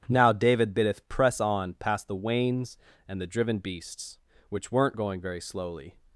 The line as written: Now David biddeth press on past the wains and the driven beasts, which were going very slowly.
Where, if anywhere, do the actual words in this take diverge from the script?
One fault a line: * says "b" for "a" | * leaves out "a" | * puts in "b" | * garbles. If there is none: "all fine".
* says "weren't" for "were"